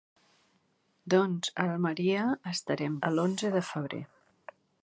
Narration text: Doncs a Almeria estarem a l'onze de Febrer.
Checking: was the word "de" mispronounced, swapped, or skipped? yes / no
no